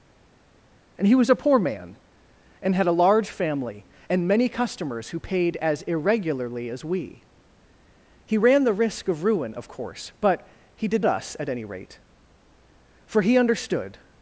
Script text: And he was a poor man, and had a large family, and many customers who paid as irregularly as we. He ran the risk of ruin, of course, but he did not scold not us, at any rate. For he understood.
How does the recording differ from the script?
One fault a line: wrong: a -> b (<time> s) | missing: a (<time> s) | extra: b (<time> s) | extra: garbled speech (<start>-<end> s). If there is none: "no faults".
missing: not scold not (11.0 s)